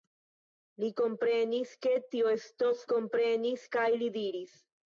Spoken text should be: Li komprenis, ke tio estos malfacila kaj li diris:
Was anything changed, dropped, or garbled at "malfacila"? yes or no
yes